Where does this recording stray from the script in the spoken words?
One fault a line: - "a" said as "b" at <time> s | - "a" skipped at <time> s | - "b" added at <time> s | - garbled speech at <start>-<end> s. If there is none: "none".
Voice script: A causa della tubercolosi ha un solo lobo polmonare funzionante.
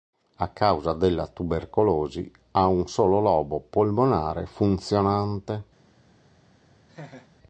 none